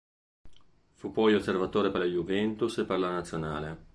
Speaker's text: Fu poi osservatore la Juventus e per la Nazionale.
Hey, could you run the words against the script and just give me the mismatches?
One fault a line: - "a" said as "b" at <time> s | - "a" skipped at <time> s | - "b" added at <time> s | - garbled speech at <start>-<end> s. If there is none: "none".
- "per" added at 1.9 s